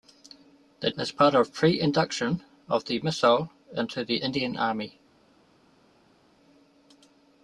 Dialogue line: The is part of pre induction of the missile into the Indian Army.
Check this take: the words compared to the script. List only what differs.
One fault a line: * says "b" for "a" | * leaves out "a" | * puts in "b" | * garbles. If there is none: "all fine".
all fine